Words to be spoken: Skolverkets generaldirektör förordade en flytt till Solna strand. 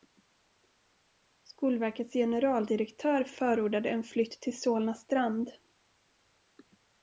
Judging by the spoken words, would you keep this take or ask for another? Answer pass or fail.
pass